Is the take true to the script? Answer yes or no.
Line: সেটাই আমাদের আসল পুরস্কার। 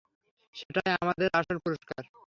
yes